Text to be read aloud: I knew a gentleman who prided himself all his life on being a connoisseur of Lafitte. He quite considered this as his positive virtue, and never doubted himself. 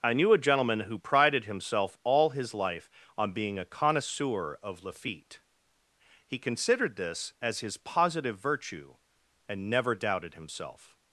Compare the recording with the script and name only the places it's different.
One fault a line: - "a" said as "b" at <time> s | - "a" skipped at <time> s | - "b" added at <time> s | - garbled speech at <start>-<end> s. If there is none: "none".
- "quite" skipped at 6.4 s